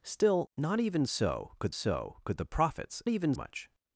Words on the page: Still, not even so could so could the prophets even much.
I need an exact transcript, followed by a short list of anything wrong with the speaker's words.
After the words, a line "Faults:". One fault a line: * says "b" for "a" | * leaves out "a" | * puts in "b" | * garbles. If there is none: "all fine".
Still, not even so could so could the prophets even much.
Faults:
all fine